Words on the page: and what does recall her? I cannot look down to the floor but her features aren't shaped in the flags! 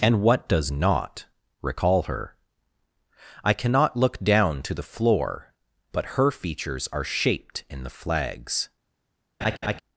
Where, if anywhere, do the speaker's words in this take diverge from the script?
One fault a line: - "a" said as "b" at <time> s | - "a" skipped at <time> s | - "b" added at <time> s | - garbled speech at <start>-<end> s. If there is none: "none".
- "not" added at 0.7 s
- "aren't" said as "are" at 6.9 s